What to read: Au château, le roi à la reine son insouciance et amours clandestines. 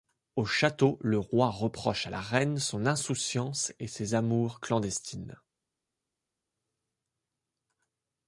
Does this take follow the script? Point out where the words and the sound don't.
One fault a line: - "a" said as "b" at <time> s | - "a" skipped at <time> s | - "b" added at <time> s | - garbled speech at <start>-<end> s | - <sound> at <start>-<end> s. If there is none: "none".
- "reproche" added at 1.5 s
- "ses" added at 3.9 s